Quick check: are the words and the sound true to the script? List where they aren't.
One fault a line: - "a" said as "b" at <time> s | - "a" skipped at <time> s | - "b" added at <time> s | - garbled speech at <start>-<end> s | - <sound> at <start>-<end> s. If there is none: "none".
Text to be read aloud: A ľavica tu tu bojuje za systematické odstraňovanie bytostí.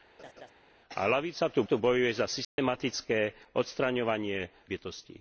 - laugh at 0.2-0.5 s
- dropout at 2.4-2.6 s